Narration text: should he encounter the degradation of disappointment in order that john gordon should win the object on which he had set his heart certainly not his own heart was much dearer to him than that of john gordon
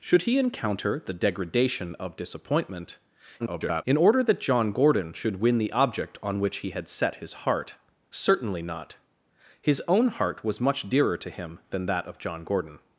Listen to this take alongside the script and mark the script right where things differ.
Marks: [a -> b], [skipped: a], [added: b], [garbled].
should he encounter the degradation of disappointment [garbled] in order that john gordon should win the object on which he had set his heart certainly not his own heart was much dearer to him than that of john gordon